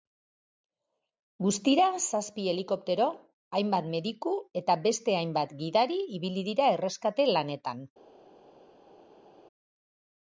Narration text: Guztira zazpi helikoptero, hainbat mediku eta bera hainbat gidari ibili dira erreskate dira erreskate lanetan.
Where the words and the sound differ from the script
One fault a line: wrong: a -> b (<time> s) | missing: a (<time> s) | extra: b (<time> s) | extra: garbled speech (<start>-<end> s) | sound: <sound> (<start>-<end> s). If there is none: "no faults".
wrong: bera -> beste (4.9 s)
missing: dira erreskate (7.3 s)